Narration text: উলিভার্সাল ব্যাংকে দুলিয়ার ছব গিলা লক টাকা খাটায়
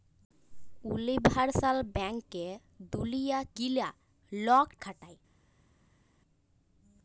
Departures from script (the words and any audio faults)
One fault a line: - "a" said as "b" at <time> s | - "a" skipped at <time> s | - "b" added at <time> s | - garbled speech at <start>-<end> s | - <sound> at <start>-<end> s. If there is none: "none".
- "ছব" skipped at 3.5 s
- "টাকা" skipped at 4.7 s